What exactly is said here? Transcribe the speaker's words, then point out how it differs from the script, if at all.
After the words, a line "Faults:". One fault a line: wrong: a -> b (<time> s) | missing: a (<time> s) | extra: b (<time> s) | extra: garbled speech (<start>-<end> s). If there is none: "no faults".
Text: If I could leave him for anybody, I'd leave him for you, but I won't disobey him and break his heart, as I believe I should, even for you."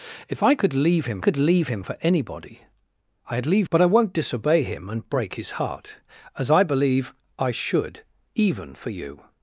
If I could leave him could leave him for anybody, I'd leave but I won't disobey him and break his heart, as I believe I should, even for you."
Faults:
extra: could leave him (1.2 s)
missing: him for you (3.7 s)